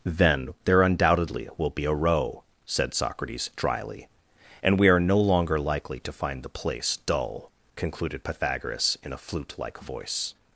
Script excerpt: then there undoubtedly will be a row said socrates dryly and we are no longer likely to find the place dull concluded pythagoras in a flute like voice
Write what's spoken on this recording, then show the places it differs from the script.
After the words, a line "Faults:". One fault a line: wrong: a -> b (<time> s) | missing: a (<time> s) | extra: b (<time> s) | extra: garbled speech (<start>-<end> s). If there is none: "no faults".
then there undoubtedly will be a row said socrates dryly and we are no longer likely to find the place dull concluded pythagoras in a flute like voice
Faults:
no faults